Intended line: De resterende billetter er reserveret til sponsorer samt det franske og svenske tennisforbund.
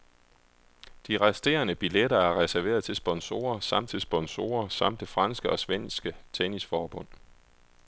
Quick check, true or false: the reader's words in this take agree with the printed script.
false